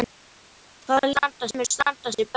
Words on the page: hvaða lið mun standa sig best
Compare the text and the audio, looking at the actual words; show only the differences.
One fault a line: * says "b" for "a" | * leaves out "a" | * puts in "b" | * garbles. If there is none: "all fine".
* says "standa" for "lið"